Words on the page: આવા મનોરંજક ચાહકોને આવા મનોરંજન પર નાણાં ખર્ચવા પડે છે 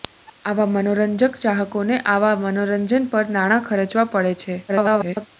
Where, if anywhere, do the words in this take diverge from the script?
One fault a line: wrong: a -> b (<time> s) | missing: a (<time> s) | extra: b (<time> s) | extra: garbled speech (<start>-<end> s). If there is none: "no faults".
extra: garbled speech (4.7-5.3 s)